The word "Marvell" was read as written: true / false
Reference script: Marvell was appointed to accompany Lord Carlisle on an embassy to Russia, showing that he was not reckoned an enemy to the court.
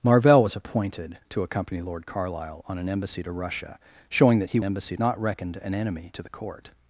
true